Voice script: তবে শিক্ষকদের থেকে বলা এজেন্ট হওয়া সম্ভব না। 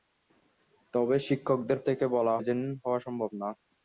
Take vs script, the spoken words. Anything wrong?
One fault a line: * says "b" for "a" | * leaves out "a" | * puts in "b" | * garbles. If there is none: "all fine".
all fine